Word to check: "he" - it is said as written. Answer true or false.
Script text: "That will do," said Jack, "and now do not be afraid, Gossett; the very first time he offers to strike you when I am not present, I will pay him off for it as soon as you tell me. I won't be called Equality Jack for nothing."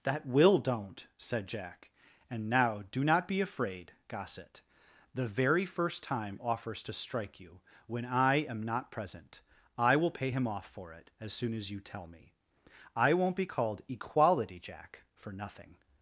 false